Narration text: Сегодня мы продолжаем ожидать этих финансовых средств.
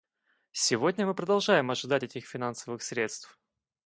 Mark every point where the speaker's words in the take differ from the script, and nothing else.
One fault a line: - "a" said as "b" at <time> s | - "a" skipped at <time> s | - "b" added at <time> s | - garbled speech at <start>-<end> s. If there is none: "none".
none